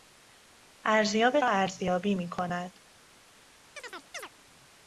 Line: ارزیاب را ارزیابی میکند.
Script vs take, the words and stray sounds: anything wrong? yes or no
yes